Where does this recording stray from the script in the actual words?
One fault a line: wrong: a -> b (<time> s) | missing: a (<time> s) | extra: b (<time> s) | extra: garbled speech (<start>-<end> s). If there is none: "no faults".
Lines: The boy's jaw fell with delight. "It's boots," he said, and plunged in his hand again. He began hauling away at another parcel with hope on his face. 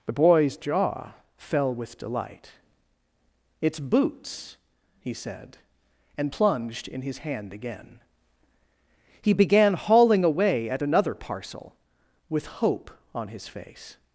no faults